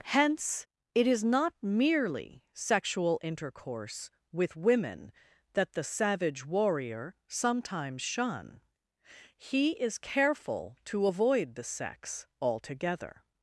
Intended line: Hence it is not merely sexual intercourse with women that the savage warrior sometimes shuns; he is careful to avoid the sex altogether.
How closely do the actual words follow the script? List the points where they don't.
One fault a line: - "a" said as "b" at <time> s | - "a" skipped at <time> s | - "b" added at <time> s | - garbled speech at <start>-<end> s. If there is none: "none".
- "shuns" said as "shun" at 8.0 s